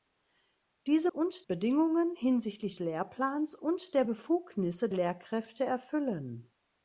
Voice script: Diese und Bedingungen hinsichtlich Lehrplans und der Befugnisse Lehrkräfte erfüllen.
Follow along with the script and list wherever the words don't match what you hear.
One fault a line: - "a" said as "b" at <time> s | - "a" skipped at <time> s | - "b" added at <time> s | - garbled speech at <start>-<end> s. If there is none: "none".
none